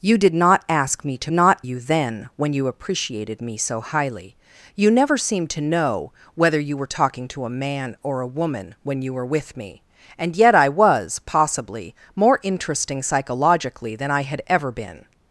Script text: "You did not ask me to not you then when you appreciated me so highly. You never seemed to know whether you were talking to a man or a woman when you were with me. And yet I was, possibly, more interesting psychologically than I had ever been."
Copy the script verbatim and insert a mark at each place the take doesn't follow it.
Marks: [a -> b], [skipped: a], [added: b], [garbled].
"You did not ask me to not you then when you appreciated me so highly. You never seemed to know whether you were talking to a man or a woman when you were with me. And yet I was, possibly, more interesting psychologically than I had ever been."